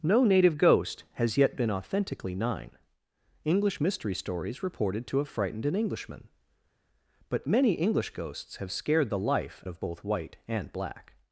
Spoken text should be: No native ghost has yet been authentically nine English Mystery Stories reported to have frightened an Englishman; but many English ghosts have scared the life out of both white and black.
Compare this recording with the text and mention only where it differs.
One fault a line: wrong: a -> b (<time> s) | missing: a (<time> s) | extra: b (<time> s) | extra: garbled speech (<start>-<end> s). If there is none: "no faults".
missing: out (9.6 s)